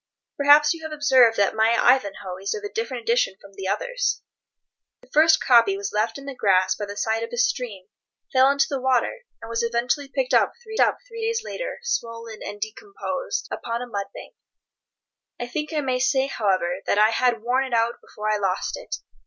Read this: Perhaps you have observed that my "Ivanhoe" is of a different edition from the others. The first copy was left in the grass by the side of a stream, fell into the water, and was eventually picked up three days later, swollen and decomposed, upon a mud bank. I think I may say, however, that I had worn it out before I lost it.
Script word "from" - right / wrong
right